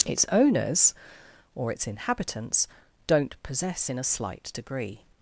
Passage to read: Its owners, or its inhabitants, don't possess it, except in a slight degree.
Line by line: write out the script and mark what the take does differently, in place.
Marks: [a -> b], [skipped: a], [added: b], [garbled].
Its owners, or its inhabitants, don't possess [skipped: it, except] in a slight degree.